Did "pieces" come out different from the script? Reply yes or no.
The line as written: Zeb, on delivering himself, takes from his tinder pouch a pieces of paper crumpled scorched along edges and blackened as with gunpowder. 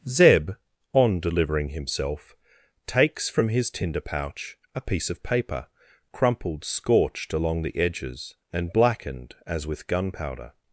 yes